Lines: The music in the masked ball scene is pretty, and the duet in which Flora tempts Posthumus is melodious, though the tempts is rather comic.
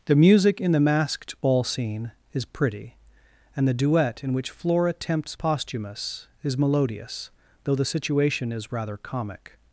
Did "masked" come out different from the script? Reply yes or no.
no